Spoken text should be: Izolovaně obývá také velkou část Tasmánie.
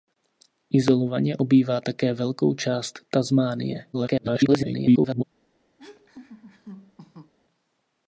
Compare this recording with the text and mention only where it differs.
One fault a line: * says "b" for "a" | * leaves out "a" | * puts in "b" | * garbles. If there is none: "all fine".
* garbles